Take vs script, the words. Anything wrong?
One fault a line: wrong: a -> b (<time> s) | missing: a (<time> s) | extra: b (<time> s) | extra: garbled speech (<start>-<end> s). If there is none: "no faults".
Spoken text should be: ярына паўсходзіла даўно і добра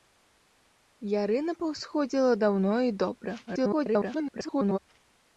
extra: garbled speech (3.5-4.8 s)